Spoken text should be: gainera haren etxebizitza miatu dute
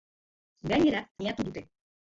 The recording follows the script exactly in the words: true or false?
false